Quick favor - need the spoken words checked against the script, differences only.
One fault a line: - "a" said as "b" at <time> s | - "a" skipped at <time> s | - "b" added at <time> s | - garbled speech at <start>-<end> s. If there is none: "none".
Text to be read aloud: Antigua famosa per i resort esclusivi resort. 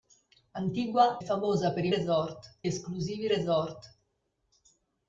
none